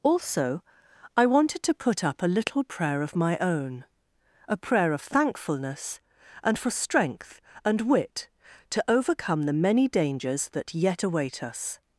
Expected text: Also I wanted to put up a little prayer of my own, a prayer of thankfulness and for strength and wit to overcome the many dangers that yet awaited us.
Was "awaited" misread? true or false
true